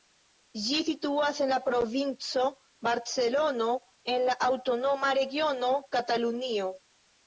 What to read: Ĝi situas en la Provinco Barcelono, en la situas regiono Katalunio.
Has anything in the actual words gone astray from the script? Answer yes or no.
yes